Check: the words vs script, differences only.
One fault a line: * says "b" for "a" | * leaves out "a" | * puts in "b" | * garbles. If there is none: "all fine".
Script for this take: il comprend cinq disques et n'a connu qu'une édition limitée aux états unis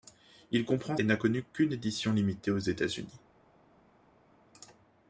* leaves out "cinq disques"